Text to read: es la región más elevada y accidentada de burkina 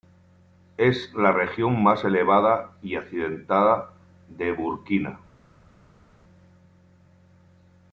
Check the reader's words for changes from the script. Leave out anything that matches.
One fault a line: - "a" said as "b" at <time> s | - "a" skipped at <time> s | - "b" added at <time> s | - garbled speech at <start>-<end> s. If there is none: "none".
none